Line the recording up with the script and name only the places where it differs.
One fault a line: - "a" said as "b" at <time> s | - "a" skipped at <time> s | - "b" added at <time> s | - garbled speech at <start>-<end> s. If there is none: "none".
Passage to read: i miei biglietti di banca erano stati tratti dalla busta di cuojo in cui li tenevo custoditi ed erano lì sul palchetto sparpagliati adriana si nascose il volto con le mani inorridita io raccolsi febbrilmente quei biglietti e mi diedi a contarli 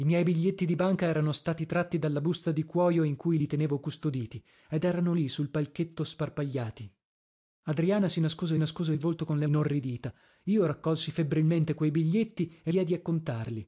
- "nascose" added at 8.6 s
- "mani" skipped at 9.5 s
- "mi" skipped at 12.7 s